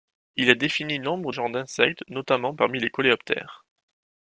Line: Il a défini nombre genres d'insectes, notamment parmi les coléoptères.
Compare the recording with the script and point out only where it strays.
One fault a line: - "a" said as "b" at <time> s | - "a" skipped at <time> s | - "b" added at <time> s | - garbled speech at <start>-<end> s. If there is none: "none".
none